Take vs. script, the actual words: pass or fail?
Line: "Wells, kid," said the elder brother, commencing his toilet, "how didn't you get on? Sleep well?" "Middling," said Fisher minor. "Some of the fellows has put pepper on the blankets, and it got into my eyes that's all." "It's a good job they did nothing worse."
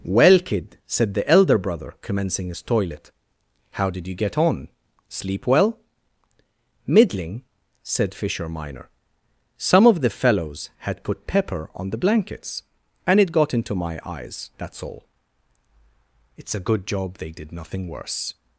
fail